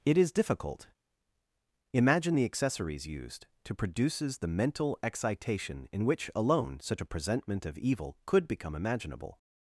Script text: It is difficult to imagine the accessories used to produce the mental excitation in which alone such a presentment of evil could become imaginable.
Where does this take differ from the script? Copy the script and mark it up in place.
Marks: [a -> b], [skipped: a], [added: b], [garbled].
It is difficult [skipped: to] imagine the accessories used to [produce -> produces] the mental excitation in which alone such a presentment of evil could become imaginable.